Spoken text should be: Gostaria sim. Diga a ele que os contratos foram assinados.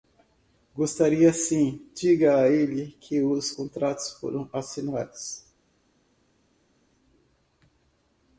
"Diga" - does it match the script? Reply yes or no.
yes